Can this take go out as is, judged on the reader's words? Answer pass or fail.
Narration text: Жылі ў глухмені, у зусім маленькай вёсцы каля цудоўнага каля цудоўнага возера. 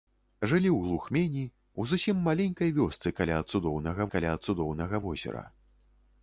pass